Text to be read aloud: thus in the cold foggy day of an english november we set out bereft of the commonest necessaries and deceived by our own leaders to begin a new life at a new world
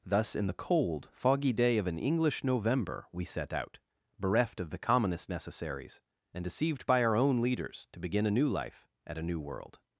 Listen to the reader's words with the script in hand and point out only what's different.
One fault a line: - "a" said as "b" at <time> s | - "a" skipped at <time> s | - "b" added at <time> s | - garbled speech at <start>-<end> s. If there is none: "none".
none